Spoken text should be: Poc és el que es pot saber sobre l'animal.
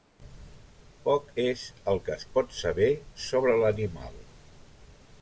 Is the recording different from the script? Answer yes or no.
no